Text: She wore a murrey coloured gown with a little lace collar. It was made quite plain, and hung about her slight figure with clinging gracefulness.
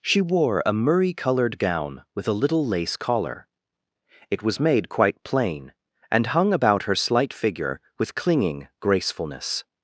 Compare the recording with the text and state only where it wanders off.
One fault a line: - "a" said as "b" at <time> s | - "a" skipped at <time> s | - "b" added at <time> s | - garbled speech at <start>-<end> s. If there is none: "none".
none